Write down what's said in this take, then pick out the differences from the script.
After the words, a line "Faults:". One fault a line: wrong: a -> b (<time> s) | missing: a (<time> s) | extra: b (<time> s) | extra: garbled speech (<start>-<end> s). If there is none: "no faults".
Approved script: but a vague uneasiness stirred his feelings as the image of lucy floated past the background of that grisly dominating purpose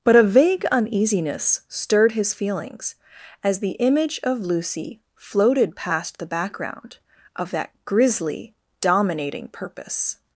but a vague uneasiness stirred his feelings as the image of lucy floated past the background of that grisly dominating purpose
Faults:
no faults